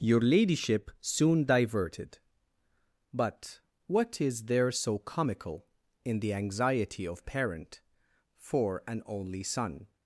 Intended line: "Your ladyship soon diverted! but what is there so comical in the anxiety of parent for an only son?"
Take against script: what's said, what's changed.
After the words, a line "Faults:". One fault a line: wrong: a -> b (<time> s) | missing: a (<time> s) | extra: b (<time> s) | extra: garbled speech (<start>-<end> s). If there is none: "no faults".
"Your ladyship soon diverted! but what is there so comical in the anxiety of parent for an only son?"
Faults:
no faults